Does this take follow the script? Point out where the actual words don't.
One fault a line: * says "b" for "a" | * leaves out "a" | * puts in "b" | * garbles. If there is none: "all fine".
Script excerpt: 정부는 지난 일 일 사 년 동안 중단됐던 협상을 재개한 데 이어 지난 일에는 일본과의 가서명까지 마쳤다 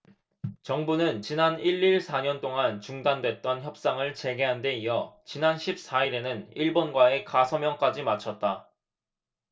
* puts in "십 사"